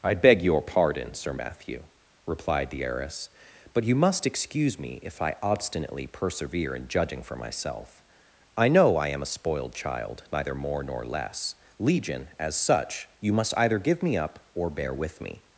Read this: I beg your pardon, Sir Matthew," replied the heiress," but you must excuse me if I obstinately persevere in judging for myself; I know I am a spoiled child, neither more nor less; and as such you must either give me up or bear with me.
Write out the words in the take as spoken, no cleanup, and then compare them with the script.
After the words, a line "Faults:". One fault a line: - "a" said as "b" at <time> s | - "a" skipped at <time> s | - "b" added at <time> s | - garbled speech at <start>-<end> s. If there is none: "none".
I beg your pardon, Sir Matthew," replied the heiress," but you must excuse me if I obstinately persevere in judging for myself; I know I am a spoiled child, neither more nor less; legion as such you must either give me up or bear with me.
Faults:
- "and" said as "legion" at 11.8 s